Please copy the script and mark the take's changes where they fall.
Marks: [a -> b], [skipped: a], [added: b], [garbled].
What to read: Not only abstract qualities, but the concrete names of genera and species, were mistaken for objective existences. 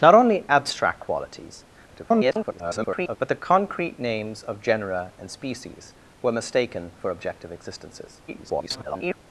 Not only abstract qualities, [garbled] but the concrete names of genera and species, were mistaken for objective existences. [garbled]